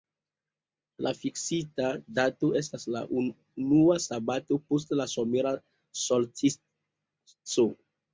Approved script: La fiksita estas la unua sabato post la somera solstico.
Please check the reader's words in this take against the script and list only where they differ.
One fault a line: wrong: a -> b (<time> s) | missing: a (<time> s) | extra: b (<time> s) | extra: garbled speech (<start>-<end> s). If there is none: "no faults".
extra: dato (2.2 s)